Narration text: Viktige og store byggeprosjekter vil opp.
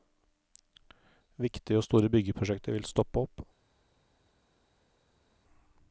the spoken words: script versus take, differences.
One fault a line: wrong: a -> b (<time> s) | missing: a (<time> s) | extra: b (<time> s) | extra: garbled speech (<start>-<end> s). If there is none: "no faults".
extra: stoppe (2.9 s)